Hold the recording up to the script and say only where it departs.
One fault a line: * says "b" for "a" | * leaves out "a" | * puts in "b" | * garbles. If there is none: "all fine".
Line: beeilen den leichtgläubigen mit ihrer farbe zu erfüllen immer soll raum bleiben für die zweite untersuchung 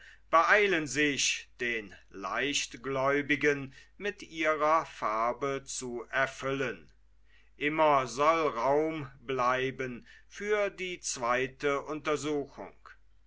* puts in "sich"